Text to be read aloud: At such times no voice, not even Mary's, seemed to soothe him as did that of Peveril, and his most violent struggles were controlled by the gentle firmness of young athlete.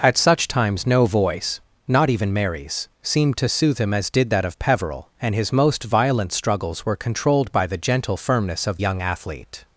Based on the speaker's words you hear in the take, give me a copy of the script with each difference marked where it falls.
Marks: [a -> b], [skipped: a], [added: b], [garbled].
At such times no voice, not even Mary's, seemed to soothe him as did that of Peveril, and his most violent struggles were controlled by the gentle firmness of young athlete.